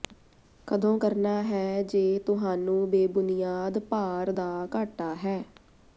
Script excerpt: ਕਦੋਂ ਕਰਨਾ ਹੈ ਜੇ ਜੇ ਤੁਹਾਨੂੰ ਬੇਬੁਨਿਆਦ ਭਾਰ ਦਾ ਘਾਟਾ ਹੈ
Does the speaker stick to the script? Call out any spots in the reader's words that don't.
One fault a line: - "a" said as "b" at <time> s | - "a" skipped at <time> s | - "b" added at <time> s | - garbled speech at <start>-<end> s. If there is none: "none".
- "ਜੇ" skipped at 2.2 s